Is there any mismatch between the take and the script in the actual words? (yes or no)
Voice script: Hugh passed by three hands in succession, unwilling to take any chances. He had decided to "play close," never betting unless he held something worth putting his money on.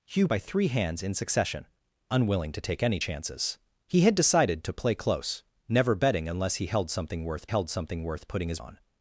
yes